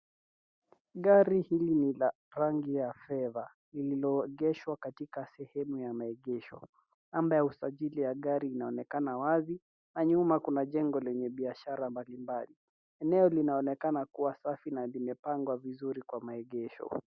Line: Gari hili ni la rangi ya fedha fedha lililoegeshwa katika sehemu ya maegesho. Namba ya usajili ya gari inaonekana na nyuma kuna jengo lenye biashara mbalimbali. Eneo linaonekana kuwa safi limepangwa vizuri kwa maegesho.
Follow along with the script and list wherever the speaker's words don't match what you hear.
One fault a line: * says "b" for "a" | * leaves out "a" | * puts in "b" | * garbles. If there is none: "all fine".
* leaves out "fedha"
* puts in "wazi"
* puts in "na"